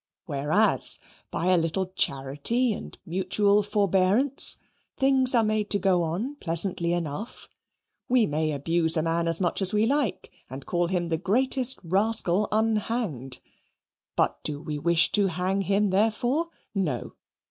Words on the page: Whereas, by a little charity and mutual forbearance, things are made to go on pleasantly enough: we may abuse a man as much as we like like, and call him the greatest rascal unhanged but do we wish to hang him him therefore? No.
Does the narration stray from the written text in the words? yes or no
yes